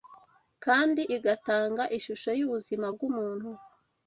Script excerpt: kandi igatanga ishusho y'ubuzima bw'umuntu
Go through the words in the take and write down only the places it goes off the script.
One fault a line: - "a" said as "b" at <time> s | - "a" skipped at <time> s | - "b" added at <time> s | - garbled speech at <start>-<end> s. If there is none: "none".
none